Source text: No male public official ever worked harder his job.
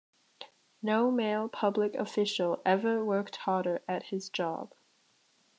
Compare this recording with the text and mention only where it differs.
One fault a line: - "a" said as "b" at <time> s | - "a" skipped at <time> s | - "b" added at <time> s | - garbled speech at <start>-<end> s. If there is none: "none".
- "at" added at 3.9 s